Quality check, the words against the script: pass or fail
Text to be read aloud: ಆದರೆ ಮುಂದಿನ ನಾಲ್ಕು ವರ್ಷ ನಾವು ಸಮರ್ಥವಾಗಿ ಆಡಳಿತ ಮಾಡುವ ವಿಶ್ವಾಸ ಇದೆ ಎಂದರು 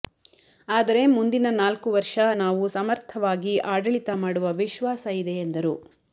pass